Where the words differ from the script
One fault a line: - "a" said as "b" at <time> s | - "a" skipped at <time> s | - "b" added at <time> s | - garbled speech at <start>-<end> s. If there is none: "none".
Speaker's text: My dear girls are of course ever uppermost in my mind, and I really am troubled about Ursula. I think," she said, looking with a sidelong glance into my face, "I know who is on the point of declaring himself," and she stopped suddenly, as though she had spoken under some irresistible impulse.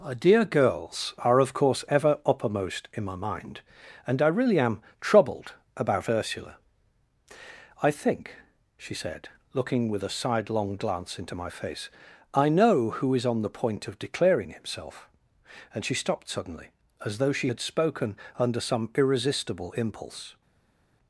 - "My" said as "Our" at 0.0 s